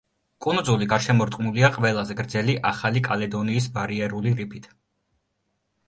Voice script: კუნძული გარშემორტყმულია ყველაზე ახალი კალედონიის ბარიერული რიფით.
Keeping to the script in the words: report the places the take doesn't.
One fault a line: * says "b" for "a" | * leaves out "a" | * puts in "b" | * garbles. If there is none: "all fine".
* puts in "გრძელი"